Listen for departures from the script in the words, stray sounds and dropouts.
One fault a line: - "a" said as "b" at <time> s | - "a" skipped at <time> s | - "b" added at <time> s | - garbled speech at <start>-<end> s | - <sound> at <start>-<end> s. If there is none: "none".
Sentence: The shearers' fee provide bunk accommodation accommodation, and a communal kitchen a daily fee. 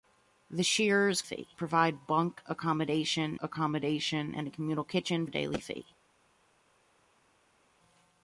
none